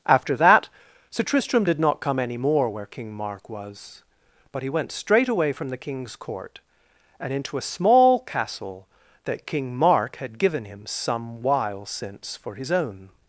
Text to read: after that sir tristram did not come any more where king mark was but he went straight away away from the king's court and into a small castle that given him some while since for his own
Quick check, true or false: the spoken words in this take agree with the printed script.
false